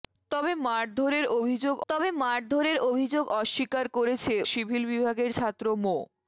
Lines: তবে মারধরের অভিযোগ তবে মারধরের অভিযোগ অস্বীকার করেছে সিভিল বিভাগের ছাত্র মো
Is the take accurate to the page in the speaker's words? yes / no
yes